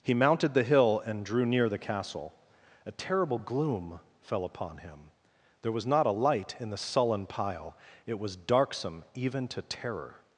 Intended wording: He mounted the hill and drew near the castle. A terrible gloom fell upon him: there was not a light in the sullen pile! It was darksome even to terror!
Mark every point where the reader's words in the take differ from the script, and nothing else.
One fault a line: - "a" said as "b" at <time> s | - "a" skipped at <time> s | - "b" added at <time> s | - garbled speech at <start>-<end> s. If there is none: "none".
none